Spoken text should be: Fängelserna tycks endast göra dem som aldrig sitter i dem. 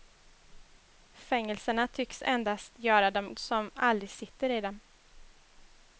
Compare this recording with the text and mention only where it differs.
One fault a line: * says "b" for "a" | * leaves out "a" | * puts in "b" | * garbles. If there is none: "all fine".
all fine